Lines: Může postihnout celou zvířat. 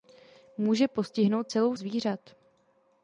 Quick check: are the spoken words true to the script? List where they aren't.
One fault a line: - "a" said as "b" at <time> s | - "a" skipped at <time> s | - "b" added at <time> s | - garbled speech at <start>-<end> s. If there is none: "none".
none